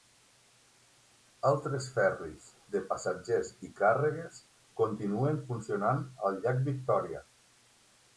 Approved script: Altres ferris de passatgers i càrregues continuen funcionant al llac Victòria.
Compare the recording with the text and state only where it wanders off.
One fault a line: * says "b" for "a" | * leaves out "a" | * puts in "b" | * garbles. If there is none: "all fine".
all fine